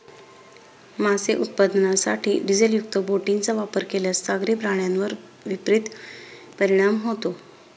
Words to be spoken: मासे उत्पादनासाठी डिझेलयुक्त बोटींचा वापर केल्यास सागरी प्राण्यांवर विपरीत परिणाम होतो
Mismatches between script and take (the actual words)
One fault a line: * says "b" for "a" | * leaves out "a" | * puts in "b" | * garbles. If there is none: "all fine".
all fine